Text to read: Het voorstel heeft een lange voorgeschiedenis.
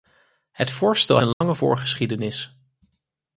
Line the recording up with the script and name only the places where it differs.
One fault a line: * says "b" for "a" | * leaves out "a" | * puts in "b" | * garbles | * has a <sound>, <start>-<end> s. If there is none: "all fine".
* leaves out "heeft"
* has a dropout, 1.3-1.4 s